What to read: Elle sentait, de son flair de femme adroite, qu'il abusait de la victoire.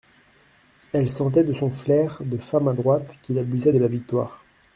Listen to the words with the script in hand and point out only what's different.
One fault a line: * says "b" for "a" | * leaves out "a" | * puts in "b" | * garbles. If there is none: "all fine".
all fine